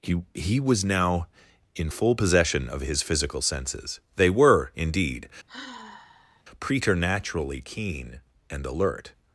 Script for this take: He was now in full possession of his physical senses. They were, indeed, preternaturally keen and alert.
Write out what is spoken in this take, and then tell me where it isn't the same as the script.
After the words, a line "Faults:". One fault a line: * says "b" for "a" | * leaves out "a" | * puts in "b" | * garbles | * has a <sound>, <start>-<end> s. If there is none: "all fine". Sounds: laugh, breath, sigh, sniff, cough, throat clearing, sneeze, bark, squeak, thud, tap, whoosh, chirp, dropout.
He he was now in full possession of his physical senses. They were, indeed, preternaturally keen and alert.
Faults:
* puts in "he"
* has a sigh, 5.5-6.4 s